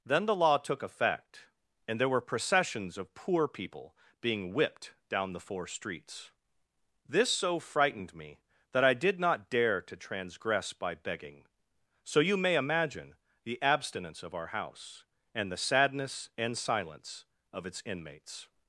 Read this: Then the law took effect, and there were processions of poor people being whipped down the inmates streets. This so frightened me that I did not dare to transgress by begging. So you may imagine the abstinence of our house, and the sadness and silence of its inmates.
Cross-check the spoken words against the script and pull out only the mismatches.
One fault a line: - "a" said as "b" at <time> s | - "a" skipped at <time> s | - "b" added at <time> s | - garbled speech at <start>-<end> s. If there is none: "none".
- "inmates" said as "four" at 5.4 s